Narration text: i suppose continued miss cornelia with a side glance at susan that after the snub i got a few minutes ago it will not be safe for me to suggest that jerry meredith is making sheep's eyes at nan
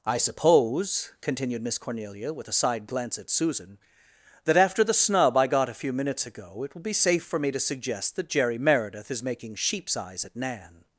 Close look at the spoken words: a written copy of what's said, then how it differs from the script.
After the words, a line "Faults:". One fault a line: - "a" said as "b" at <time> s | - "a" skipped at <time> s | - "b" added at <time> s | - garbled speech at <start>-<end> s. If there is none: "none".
i suppose continued miss cornelia with a side glance at susan that after the snub i got a few minutes ago it will be safe for me to suggest that jerry meredith is making sheep's eyes at nan
Faults:
- "not" skipped at 6.8 s